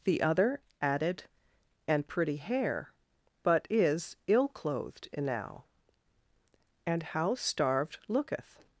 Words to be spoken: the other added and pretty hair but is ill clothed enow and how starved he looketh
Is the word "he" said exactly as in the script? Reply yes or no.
no